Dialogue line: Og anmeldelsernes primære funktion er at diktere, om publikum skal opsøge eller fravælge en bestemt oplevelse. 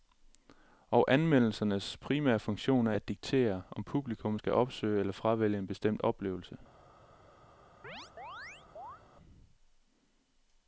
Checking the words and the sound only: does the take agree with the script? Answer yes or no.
no